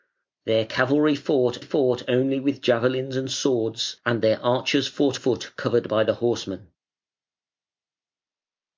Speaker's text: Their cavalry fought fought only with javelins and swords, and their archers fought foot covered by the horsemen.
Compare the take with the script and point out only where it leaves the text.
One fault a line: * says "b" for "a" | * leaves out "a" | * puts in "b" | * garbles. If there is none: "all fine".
all fine